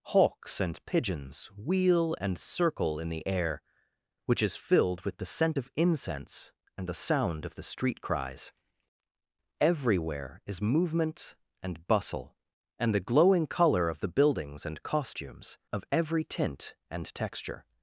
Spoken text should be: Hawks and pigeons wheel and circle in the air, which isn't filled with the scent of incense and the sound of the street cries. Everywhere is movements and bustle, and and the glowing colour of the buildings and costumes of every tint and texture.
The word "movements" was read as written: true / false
false